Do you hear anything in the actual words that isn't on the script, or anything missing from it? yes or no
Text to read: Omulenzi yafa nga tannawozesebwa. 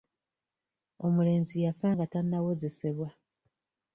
no